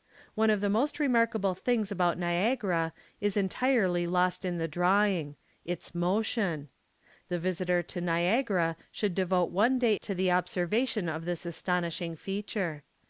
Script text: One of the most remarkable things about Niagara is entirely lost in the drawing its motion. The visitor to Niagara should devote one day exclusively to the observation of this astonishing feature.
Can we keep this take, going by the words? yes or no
no